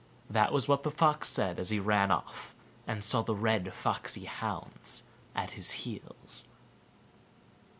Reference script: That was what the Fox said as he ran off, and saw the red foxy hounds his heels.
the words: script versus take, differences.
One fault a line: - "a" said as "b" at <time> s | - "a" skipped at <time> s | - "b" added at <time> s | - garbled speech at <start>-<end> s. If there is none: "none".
- "at" added at 5.3 s